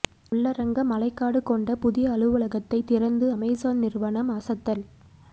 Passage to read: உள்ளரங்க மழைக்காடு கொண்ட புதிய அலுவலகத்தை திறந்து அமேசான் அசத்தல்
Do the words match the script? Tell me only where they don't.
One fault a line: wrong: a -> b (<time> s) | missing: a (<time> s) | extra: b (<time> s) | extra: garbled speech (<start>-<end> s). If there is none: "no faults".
extra: நிறுவனம் (3.8 s)